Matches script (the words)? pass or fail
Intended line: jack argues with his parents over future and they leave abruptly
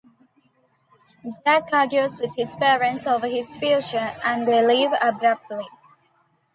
fail